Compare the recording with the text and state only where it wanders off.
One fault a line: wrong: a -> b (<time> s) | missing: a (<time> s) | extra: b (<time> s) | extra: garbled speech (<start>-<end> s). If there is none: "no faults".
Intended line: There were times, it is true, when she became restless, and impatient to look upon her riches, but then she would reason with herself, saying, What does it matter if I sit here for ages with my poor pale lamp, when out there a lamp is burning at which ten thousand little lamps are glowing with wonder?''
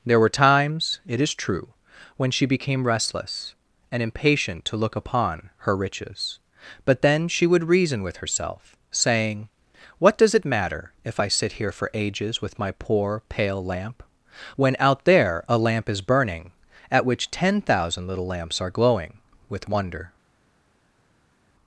no faults